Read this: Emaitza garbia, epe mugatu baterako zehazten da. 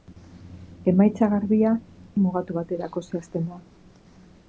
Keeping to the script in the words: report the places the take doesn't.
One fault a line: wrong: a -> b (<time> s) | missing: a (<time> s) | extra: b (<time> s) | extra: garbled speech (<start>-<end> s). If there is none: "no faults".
missing: epe (1.8 s)